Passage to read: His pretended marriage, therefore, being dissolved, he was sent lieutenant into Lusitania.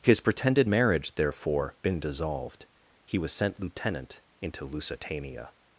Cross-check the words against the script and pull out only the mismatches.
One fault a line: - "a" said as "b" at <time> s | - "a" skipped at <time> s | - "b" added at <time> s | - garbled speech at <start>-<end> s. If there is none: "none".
- "being" said as "been" at 1.8 s